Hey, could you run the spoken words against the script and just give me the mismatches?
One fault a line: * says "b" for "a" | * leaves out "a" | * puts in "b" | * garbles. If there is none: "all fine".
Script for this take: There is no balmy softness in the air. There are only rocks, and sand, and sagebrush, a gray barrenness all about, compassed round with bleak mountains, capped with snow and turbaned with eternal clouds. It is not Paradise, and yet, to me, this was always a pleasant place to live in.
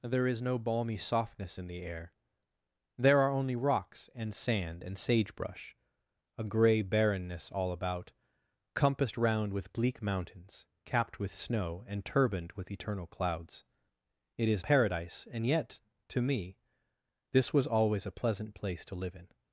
* leaves out "not"